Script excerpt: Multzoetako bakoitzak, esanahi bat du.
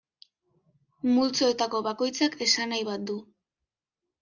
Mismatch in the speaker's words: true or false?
false